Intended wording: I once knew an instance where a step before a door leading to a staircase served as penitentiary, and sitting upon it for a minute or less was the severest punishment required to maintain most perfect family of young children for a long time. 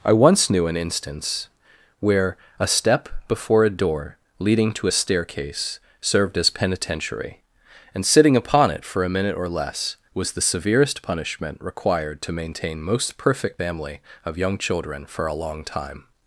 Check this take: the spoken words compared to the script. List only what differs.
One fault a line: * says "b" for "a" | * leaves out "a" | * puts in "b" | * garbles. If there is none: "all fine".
all fine